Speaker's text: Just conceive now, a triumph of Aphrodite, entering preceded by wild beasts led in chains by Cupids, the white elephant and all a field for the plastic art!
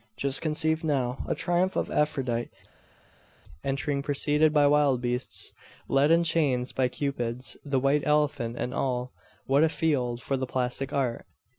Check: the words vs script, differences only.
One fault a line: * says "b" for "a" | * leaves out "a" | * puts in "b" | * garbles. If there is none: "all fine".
* puts in "what"